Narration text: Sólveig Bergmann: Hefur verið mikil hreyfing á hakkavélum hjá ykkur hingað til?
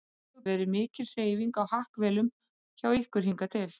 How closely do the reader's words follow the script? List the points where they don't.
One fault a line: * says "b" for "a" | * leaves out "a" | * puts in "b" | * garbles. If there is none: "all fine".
* leaves out "Bergmann Hefur"